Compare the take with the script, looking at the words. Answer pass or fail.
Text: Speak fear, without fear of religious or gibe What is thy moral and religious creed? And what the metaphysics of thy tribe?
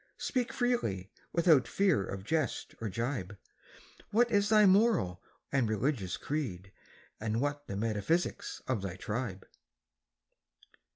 fail